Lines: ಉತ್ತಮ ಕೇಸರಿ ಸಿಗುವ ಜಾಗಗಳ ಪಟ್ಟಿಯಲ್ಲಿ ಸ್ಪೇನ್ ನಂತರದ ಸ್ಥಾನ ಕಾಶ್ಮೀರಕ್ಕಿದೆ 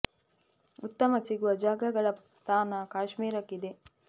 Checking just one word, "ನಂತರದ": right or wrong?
wrong